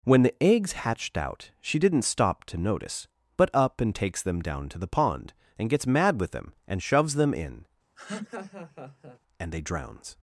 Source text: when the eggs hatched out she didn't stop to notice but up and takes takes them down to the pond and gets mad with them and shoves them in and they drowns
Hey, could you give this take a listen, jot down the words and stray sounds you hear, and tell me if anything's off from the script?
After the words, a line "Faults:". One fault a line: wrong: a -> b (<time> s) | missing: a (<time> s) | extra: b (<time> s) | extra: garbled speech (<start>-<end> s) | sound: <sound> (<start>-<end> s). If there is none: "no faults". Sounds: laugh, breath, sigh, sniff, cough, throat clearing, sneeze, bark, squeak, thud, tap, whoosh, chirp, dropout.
when the eggs hatched out she didn't stop to notice but up and takes them down to the pond and gets mad with them and shoves them in and they drowns
Faults:
missing: takes (4.2 s)
sound: laugh (8.0-9.2 s)